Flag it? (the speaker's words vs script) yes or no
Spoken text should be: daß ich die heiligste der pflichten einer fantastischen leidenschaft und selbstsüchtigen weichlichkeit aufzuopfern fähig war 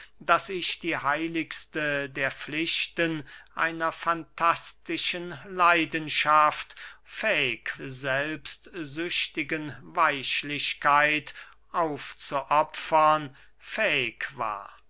yes